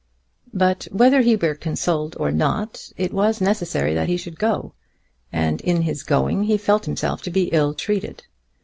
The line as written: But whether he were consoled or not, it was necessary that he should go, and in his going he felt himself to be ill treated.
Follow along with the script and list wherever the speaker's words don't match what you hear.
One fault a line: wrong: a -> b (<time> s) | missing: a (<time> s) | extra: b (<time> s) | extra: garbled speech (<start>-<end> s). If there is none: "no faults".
no faults